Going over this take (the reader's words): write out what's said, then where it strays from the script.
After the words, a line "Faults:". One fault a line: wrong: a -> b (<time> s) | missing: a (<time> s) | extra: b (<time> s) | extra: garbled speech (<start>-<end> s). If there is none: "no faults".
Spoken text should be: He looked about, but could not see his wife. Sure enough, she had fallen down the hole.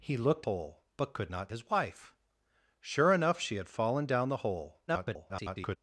He looked hole, but could not his wife. Sure enough, she had fallen down the hole. [garbled]
Faults:
wrong: about -> hole (0.4 s)
missing: see (1.5 s)
extra: garbled speech (4.9-5.8 s)